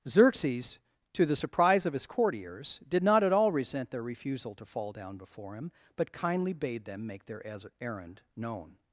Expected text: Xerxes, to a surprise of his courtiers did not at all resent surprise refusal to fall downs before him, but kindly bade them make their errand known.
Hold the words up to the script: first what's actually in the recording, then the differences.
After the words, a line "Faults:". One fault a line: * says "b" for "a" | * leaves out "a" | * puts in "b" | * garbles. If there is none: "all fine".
Xerxes, to the surprise of his courtiers did not at all resent their refusal to fall down before him, but kindly bade them make their errand known.
Faults:
* says "the" for "a"
* says "their" for "surprise"
* says "down" for "downs"